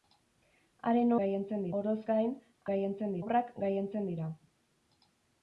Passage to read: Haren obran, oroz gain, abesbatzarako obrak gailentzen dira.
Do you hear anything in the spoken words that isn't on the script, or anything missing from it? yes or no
yes